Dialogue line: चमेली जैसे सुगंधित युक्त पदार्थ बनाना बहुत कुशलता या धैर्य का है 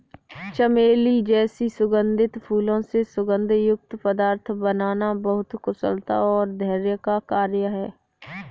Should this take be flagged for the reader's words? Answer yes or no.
yes